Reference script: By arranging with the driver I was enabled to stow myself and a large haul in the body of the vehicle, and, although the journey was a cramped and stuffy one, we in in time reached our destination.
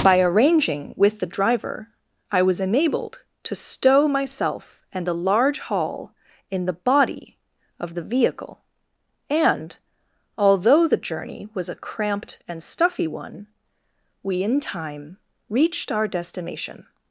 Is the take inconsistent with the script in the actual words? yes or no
yes